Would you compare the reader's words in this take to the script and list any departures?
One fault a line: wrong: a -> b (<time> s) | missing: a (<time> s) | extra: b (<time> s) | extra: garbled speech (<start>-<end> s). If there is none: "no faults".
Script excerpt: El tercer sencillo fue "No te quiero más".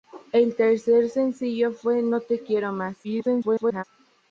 extra: garbled speech (3.0-3.8 s)